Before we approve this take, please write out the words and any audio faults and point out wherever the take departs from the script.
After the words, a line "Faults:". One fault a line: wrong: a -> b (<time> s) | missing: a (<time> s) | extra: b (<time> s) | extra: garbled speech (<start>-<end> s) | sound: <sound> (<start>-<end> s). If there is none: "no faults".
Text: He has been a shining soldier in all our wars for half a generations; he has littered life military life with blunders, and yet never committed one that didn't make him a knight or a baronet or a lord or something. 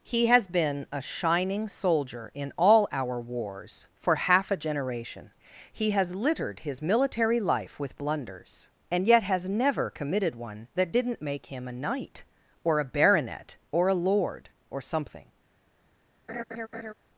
He has been a shining soldier in all our wars for half a generation; he has littered his military life with blunders, and yet has never committed one that didn't make him a knight or a baronet or a lord or something.
Faults:
wrong: generations -> generation (4.6 s)
wrong: life -> his (6.6 s)
extra: has (9.2 s)
sound: laugh (16.3-16.9 s)